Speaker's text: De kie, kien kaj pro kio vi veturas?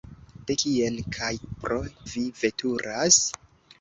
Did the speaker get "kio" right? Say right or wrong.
wrong